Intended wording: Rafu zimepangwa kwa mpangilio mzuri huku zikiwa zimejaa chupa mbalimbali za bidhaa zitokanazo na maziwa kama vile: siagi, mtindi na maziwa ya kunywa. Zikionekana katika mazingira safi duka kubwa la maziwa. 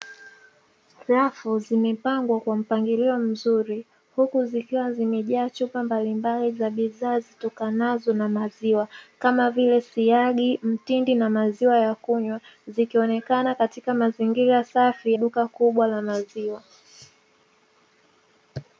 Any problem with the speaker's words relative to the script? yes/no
no